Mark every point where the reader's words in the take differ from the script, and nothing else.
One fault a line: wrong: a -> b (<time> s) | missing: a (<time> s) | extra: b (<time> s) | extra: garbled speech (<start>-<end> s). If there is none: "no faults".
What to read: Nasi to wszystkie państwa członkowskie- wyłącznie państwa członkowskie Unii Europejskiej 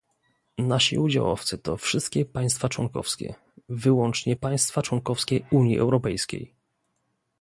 extra: udziałowcy (1.0 s)